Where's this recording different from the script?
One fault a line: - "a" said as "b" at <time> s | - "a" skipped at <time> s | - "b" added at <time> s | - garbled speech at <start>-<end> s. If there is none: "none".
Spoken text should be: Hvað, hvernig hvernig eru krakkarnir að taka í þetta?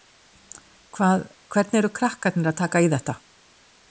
- "hvernig" skipped at 1.8 s